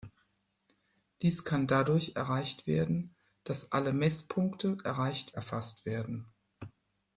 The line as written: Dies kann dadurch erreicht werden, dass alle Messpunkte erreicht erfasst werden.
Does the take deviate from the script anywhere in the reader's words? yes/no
no